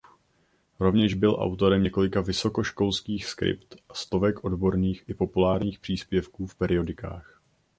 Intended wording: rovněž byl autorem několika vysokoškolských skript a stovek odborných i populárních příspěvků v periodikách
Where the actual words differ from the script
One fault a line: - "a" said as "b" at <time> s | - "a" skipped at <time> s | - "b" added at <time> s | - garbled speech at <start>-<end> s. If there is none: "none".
none